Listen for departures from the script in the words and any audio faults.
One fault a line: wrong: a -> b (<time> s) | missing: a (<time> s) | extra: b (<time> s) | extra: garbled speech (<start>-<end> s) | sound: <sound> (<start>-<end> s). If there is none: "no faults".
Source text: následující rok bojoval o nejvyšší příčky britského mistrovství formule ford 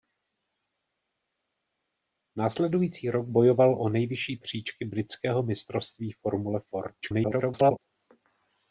extra: garbled speech (7.0-7.8 s)